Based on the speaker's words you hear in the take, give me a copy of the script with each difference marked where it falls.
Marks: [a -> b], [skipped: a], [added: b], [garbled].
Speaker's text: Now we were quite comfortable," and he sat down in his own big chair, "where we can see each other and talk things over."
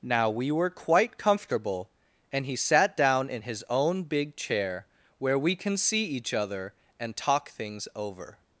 Now we were quite comfortable," and he sat down in his own big chair, "where we can see each other and talk things over."